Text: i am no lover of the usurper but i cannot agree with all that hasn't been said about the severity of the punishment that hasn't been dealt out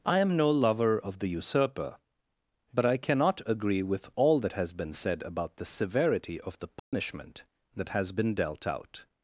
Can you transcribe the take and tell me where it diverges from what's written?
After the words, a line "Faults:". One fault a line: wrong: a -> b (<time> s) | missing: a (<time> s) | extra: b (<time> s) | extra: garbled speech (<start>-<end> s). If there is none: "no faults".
i am no lover of the usurper but i cannot agree with all that has been said about the severity of the punishment that has been dealt out
Faults:
wrong: hasn't -> has (4.5 s)
wrong: hasn't -> has (7.9 s)